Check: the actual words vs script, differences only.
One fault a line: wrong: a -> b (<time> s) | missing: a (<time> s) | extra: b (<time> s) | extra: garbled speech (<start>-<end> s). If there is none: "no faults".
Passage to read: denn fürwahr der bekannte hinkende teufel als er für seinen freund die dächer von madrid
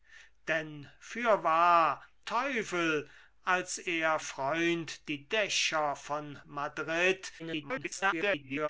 missing: der bekannte hinkende (2.0 s)
missing: für seinen (4.2 s)
extra: garbled speech (7.4-8.7 s)